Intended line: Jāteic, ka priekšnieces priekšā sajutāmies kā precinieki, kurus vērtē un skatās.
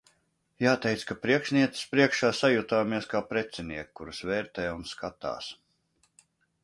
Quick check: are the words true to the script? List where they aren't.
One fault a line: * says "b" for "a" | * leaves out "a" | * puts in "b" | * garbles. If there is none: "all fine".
all fine